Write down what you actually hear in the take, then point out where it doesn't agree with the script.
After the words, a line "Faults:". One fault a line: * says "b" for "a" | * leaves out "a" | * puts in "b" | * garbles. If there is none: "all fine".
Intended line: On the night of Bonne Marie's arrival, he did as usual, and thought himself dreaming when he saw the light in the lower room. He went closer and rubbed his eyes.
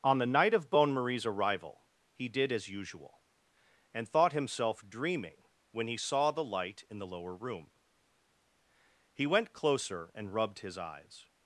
On the night of Bonne Marie's arrival, he did as usual, and thought himself dreaming when he saw the light in the lower room. He went closer and rubbed his eyes.
Faults:
all fine